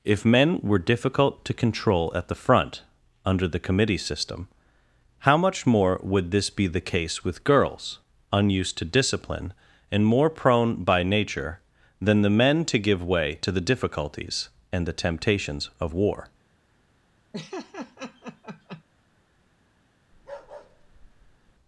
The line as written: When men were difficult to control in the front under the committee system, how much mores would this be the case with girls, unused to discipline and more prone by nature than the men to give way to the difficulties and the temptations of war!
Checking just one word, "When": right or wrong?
wrong